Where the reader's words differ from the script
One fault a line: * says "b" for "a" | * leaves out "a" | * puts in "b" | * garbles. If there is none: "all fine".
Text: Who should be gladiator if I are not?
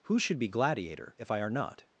all fine